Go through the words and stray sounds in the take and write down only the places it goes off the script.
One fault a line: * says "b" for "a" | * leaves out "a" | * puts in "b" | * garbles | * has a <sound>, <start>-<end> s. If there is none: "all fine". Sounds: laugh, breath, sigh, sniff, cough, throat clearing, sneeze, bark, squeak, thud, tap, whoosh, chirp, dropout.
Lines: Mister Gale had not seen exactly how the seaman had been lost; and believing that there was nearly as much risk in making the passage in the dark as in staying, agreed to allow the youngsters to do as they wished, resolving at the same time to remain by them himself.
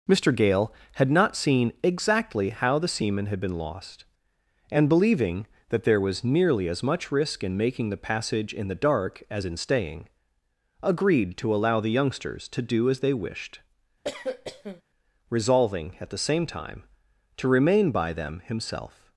* has a cough, 14.0-14.8 s